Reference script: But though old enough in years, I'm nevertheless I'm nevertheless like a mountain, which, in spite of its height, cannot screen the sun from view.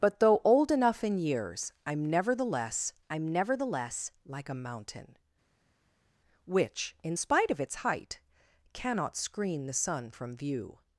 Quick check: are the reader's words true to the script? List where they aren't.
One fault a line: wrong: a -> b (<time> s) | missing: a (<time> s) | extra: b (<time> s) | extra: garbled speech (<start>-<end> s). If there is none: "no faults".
no faults